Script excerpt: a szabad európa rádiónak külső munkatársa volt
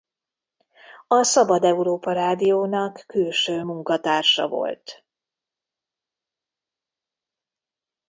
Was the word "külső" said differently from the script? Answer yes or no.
no